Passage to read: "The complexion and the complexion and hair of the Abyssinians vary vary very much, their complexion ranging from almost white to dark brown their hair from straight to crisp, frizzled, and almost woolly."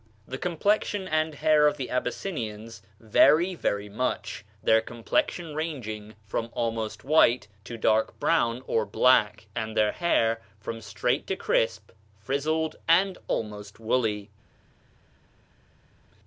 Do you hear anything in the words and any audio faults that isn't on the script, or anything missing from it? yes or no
yes